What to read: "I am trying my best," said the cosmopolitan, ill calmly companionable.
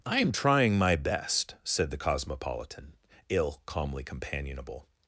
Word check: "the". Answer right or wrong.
right